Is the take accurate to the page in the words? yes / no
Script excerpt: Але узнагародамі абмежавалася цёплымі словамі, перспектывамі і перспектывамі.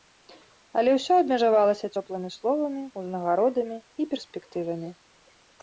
no